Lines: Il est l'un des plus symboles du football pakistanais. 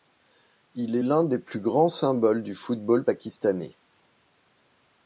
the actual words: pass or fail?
fail